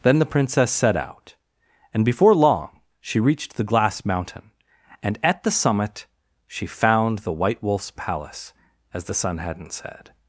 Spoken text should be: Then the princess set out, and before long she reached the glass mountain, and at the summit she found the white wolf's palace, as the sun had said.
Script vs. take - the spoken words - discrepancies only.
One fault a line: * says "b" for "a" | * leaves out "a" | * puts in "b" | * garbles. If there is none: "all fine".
* says "hadn't" for "had"